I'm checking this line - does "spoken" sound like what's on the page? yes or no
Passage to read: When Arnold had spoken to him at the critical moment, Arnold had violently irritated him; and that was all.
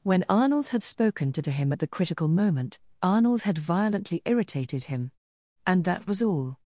yes